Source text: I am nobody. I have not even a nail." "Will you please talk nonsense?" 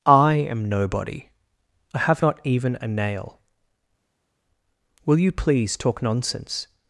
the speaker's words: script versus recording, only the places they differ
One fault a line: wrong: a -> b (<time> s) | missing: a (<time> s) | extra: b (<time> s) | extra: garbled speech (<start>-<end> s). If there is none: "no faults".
no faults